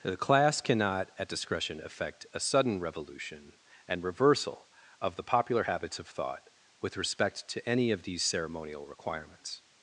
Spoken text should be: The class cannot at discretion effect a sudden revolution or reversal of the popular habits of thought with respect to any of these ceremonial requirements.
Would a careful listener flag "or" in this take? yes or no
yes